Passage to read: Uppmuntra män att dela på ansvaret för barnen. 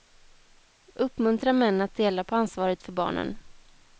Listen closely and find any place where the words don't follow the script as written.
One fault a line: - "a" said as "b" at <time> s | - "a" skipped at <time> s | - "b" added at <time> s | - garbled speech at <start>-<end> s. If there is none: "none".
none